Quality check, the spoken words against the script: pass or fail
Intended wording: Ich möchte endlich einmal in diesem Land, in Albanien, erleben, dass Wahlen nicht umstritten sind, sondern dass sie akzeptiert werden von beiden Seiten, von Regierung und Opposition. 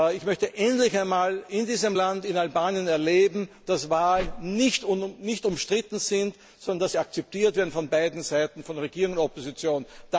pass